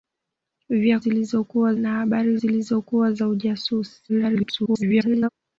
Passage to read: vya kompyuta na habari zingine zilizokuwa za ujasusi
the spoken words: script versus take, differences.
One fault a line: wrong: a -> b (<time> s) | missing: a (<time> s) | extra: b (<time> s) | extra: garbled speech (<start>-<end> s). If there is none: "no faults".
wrong: kompyuta -> zilizokuwa (1.0 s)
missing: zingine (2.4 s)
extra: garbled speech (4.1-5.3 s)